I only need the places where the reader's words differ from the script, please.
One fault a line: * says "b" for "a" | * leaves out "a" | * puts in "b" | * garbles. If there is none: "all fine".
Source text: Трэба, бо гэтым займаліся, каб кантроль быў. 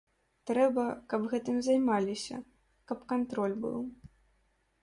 * says "каб" for "бо"